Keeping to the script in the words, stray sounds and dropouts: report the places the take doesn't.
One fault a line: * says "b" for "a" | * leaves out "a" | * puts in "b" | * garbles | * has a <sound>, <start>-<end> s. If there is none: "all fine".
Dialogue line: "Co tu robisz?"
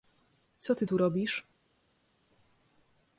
* puts in "ty"